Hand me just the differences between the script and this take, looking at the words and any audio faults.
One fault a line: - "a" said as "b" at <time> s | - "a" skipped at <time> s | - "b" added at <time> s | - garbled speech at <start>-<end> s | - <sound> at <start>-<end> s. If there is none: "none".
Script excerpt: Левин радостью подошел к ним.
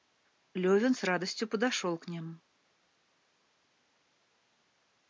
- "с" added at 0.9 s